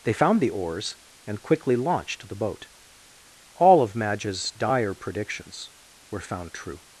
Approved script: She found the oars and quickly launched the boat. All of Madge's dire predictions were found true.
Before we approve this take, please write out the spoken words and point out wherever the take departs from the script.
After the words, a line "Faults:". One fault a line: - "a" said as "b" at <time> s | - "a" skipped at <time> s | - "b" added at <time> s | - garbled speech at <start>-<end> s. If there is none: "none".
They found the oars and quickly launched the boat. All of Madge's dire predictions were found true.
Faults:
- "She" said as "They" at 0.0 s